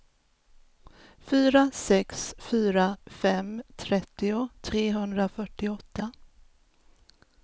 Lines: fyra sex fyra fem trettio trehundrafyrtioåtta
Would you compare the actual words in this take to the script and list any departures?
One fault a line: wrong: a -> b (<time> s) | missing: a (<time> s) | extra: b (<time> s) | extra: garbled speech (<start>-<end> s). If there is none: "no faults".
no faults